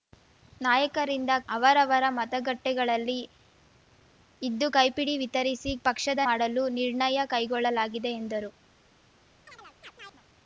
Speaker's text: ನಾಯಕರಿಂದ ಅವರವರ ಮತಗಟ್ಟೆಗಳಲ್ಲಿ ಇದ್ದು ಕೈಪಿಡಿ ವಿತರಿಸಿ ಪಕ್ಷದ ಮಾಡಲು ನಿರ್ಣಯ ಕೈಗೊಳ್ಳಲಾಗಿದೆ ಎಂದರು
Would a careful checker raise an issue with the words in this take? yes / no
no